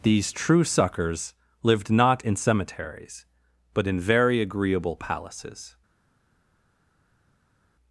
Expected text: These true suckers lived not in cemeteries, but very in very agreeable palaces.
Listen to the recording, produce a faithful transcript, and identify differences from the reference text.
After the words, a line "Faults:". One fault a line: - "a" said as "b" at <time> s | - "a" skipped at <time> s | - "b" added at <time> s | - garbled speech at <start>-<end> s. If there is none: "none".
These true suckers lived not in cemeteries, but in very agreeable palaces.
Faults:
- "very" skipped at 3.9 s